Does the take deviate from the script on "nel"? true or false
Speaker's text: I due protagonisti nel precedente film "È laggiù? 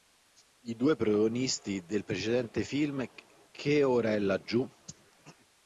true